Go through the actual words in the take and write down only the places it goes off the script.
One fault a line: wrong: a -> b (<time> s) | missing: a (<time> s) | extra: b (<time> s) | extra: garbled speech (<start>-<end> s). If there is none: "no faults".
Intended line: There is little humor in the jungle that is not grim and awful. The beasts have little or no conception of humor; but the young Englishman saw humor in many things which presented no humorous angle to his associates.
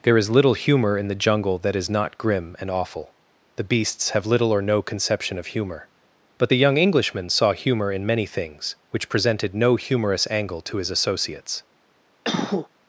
no faults